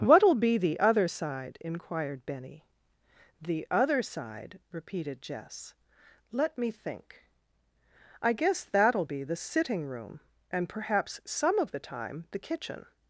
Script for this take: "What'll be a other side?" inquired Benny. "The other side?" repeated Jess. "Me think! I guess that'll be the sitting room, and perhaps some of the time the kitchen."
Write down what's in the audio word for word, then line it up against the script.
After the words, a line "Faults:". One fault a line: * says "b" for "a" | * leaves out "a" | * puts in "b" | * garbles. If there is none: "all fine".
"What'll be the other side?" inquired Benny. "The other side?" repeated Jess. "Let me think! I guess that'll be the sitting room, and perhaps some of the time the kitchen."
Faults:
* says "the" for "a"
* puts in "Let"